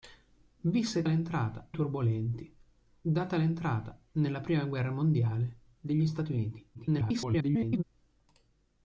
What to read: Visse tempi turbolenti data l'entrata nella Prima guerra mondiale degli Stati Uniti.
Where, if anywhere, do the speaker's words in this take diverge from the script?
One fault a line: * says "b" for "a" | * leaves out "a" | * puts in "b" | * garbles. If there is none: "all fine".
* says "l'entrata" for "tempi"
* garbles